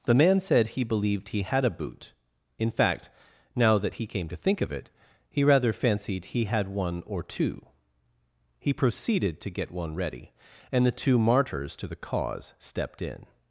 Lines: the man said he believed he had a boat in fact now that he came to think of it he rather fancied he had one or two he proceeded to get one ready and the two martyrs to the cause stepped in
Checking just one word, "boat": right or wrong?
wrong